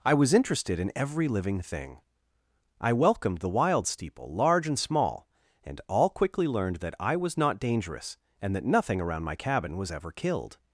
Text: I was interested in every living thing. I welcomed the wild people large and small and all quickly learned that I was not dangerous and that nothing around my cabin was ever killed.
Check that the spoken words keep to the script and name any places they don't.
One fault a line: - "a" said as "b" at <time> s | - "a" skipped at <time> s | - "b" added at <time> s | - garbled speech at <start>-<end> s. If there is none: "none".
- "people" said as "steeple" at 3.9 s